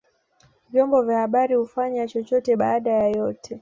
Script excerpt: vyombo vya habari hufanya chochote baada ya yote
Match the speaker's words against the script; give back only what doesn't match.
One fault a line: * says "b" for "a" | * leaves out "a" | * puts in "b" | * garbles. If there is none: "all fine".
all fine